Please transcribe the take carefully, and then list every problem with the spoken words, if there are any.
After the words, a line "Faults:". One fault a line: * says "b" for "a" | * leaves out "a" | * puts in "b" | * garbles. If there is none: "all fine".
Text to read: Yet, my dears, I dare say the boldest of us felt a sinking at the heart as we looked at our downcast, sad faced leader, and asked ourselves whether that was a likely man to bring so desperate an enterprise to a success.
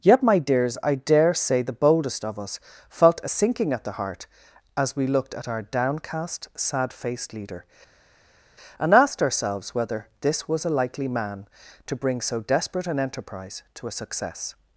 Yet, my dears, I dare say the boldest of us felt a sinking at the heart as we looked at our downcast, sad faced leader, and asked ourselves whether this was a likely man to bring so desperate an enterprise to a success.
Faults:
* says "this" for "that"